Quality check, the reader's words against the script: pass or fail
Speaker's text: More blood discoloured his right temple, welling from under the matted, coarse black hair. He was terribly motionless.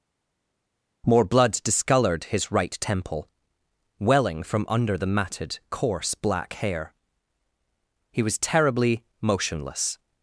pass